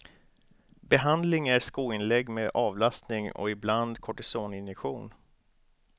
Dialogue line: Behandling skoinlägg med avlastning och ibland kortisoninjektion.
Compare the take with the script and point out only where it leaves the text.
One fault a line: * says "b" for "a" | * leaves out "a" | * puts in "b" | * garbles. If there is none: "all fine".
* puts in "är"